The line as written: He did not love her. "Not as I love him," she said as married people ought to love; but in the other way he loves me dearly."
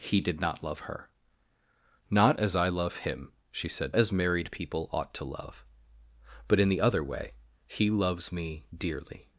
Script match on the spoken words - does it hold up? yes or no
yes